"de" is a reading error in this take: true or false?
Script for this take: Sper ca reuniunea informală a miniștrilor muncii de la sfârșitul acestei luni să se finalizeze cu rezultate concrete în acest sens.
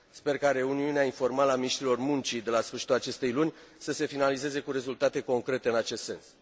false